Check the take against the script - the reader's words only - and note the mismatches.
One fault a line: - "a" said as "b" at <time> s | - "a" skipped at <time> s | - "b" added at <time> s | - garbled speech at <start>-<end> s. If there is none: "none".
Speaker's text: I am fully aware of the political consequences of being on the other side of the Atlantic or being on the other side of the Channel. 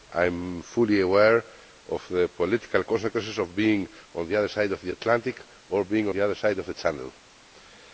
- "on" skipped at 6.1 s